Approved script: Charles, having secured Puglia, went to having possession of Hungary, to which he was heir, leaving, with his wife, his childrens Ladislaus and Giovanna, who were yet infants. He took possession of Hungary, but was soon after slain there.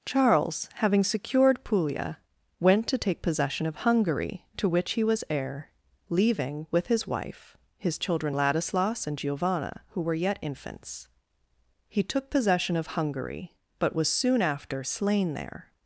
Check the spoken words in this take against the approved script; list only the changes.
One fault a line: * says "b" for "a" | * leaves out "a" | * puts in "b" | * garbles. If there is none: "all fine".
* says "take" for "having"
* says "children" for "childrens"